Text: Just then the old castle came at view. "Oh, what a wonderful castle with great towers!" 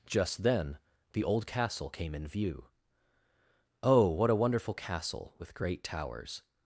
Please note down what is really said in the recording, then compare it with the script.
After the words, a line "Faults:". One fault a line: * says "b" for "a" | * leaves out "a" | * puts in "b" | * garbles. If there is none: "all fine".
Just then the old castle came in view. "Oh, what a wonderful castle with great towers!"
Faults:
* says "in" for "at"